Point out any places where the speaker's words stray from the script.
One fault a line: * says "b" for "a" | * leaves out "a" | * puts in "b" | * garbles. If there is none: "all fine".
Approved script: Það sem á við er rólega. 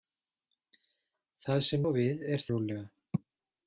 all fine